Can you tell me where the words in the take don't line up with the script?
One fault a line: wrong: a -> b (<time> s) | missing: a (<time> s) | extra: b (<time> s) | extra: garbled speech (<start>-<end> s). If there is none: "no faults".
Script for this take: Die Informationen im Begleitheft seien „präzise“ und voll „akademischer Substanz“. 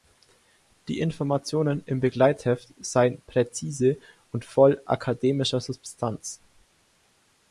no faults